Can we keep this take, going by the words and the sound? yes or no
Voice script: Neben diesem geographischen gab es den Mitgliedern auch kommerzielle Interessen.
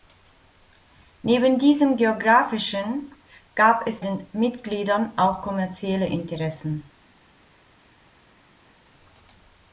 yes